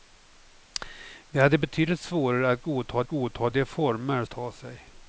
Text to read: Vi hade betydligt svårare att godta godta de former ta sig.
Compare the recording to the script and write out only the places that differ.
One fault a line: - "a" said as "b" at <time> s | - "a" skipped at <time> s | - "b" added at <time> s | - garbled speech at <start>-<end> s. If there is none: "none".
none